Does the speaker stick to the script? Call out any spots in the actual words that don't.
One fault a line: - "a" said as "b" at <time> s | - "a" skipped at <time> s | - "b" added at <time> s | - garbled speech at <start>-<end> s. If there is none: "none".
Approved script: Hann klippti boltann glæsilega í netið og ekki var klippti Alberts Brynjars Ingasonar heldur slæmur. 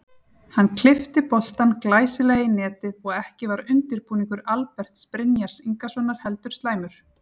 - "klippti" said as "undirbúningur" at 3.8 s